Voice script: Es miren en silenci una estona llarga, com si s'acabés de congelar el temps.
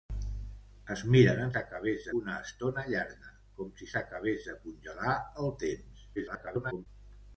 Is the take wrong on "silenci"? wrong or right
wrong